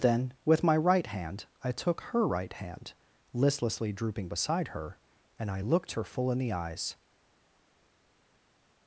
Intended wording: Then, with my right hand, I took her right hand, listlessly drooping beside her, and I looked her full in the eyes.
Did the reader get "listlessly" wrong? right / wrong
right